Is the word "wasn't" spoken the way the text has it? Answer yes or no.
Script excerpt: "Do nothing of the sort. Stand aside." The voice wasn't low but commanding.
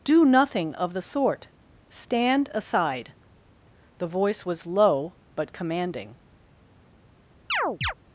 no